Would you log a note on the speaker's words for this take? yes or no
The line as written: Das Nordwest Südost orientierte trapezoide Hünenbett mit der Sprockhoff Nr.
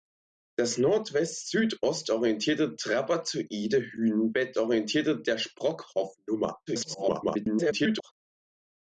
yes